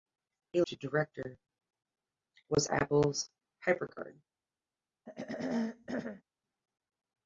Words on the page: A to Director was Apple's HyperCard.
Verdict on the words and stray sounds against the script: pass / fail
fail